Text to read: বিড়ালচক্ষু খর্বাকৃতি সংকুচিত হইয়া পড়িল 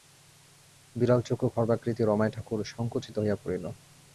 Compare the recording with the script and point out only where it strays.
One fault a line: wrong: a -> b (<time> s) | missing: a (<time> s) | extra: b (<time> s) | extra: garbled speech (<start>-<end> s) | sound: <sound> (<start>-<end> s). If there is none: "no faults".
extra: রমাই ঠাকুর (2.0 s)